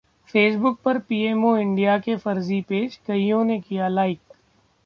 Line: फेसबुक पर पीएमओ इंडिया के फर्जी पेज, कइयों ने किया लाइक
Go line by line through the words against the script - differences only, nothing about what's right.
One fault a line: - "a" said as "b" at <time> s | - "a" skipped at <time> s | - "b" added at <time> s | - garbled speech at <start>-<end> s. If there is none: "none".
none